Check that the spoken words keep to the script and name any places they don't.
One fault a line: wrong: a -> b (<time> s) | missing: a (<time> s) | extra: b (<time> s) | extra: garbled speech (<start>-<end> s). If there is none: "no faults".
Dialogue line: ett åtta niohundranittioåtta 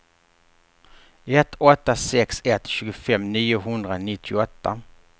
extra: sex ett tjugofem (1.9 s)